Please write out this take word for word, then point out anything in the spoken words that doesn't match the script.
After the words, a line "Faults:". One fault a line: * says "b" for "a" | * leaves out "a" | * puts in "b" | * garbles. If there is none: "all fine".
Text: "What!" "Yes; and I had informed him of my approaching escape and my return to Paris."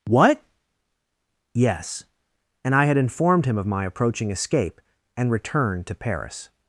"What!" "Yes; and I had informed him of my approaching escape and return to Paris."
Faults:
* leaves out "my"